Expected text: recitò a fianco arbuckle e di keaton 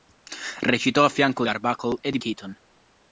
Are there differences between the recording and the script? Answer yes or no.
no